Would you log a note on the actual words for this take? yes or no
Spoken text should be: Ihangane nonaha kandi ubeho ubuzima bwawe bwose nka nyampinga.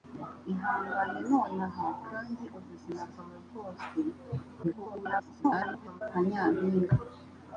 yes